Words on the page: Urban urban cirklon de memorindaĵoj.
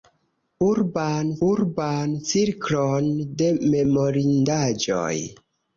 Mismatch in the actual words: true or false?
false